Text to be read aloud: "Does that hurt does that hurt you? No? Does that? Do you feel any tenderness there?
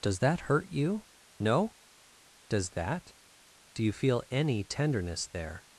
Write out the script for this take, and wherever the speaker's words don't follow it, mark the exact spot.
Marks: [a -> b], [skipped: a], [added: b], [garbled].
"Does that hurt [skipped: does that hurt] you? No? Does that? Do you feel any tenderness there?